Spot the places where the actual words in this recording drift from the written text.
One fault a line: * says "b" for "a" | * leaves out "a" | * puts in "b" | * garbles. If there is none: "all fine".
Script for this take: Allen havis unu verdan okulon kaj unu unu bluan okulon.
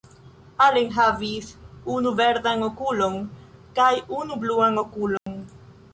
* leaves out "unu"